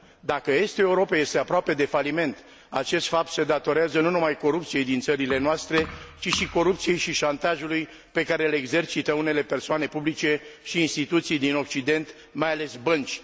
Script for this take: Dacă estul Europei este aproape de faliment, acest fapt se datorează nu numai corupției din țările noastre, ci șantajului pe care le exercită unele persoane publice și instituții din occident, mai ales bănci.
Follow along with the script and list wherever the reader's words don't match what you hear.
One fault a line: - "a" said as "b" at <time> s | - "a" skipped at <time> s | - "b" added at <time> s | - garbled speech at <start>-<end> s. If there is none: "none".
- "și corupției și" added at 6.3 s